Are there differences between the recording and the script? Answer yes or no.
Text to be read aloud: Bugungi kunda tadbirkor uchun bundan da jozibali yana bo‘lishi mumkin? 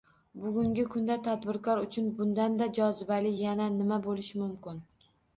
yes